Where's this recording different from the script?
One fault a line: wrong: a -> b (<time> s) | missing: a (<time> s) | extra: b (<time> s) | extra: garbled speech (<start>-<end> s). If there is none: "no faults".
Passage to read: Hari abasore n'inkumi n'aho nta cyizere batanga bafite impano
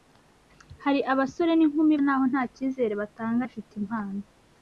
no faults